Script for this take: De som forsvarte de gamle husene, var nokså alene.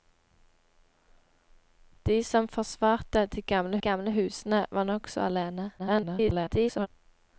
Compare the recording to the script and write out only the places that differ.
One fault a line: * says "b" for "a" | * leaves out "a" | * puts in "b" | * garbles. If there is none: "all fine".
* puts in "gamle"
* garbles